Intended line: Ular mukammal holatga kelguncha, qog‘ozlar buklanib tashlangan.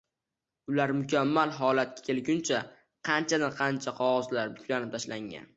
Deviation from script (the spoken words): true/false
true